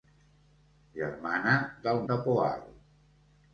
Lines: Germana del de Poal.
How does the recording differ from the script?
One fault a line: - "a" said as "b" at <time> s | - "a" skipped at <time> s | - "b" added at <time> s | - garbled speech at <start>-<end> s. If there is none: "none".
none